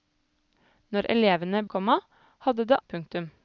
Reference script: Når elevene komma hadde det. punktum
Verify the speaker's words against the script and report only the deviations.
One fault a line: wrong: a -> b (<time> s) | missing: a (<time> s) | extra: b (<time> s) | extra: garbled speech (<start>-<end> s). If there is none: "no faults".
no faults